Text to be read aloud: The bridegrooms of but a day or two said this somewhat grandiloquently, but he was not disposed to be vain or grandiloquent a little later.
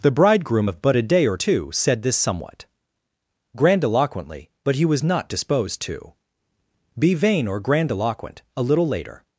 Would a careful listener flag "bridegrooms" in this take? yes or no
yes